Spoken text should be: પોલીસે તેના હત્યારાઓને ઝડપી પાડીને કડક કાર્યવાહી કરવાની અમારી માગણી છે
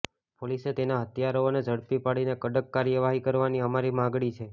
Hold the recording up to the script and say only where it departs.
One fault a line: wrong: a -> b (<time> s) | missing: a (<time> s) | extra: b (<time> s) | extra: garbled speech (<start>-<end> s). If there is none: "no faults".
no faults